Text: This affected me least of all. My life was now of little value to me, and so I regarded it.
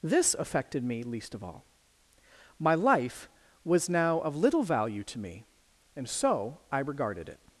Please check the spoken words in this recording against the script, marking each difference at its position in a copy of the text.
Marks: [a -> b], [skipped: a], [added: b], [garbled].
This affected me least of all. My life was now of little value to me, and so I regarded it.